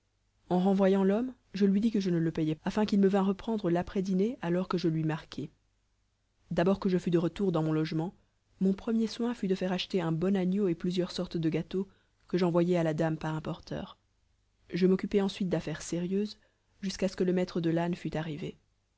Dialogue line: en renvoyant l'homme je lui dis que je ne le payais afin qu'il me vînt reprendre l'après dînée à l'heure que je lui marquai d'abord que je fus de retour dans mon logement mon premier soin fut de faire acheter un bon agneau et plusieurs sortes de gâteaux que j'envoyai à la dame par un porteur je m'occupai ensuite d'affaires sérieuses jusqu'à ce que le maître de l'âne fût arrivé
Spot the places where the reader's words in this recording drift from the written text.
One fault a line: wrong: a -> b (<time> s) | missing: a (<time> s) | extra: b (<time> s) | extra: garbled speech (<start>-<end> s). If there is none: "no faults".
no faults